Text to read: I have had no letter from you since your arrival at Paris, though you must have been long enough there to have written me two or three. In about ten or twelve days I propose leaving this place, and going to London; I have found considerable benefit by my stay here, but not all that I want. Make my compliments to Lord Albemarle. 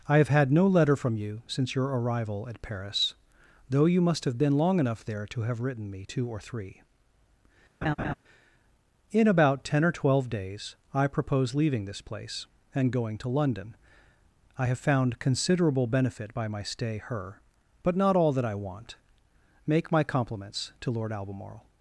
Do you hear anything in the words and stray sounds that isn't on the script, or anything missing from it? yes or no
yes